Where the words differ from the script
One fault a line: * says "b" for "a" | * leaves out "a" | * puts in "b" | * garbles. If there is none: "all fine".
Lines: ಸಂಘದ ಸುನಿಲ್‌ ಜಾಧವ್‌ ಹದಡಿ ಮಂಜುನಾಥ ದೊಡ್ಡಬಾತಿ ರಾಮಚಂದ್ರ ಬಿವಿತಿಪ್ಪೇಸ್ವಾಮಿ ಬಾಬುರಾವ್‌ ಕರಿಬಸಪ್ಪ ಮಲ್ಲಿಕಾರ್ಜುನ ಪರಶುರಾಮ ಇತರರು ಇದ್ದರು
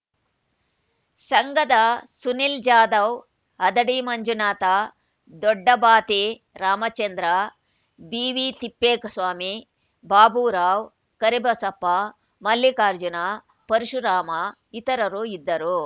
all fine